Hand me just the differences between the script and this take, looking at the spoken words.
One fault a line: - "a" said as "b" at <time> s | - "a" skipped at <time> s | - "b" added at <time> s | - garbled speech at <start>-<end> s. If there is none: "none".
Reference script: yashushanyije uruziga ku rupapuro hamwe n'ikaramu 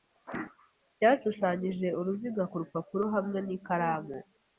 none